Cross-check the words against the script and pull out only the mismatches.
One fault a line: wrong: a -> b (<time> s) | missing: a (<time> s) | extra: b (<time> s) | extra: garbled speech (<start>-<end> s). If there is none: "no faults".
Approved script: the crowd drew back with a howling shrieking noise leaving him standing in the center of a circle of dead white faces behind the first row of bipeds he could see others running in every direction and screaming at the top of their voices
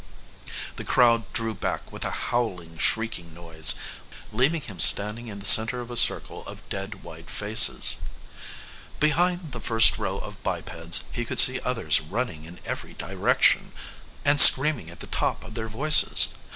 no faults